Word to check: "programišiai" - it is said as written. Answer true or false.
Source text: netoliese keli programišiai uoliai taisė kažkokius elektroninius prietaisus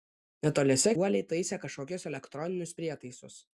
false